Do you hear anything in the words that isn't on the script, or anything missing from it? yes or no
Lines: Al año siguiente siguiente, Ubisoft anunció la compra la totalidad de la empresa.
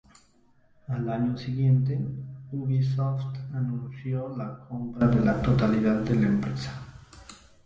yes